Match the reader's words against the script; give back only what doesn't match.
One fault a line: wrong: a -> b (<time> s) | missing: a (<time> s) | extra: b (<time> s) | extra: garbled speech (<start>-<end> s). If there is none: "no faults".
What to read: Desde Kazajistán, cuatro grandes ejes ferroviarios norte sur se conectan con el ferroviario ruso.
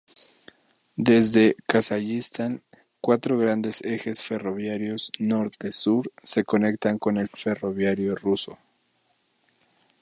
no faults